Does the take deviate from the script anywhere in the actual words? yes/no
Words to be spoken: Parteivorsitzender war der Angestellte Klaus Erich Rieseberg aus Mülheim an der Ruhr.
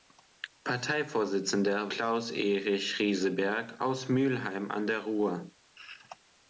yes